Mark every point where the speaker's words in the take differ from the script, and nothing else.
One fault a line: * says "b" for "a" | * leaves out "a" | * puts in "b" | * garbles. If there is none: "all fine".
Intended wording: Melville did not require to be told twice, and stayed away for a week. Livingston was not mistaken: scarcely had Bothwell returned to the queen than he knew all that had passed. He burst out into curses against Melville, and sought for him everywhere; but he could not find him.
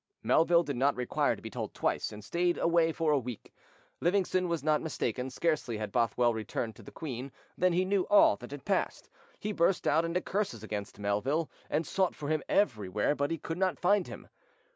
all fine